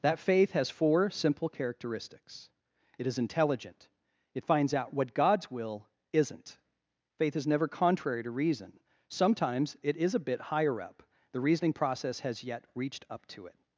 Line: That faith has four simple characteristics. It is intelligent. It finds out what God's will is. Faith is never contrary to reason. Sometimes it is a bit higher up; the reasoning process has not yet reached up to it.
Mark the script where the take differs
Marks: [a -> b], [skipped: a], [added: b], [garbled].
That faith has four simple characteristics. It is intelligent. It finds out what God's will [is. -> isn't] Faith is never contrary to reason. Sometimes it is a bit higher up; the reasoning process has [skipped: not] yet reached up to it.